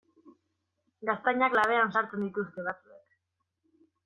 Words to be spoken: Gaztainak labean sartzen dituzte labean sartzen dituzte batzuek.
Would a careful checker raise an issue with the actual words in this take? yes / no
yes